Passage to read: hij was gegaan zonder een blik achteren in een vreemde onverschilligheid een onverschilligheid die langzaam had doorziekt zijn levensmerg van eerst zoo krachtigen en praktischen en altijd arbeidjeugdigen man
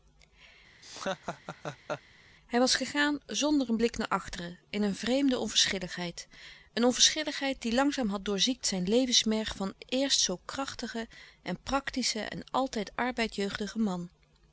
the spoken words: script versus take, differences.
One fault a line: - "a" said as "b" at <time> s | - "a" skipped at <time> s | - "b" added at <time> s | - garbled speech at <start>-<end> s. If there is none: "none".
- "naar" added at 4.0 s